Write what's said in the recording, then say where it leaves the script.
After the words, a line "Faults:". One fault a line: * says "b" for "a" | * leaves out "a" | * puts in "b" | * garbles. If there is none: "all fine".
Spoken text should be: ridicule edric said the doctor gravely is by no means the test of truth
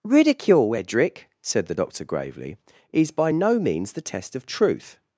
ridicule edric said the doctor gravely is by no means the test of truth
Faults:
all fine